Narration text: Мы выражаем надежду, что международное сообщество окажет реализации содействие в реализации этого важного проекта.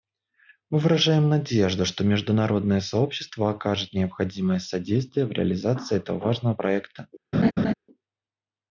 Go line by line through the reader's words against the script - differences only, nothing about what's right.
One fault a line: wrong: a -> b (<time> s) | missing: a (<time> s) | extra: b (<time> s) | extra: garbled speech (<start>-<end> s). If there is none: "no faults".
wrong: реализации -> необходимое (3.9 s)